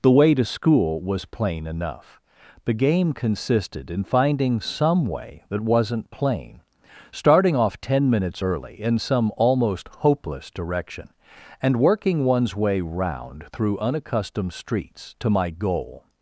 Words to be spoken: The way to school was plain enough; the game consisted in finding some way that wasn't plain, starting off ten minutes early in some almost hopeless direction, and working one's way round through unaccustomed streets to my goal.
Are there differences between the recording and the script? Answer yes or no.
no